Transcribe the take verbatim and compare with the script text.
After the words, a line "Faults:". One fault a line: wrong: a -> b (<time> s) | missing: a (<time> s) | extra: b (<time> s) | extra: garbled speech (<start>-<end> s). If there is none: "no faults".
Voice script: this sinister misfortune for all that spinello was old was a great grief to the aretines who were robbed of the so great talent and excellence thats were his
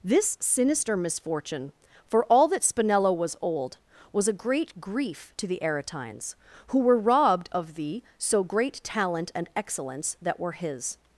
this sinister misfortune for all that spinello was old was a great grief to the aretines who were robbed of the so great talent and excellence that were his
Faults:
wrong: thats -> that (10.2 s)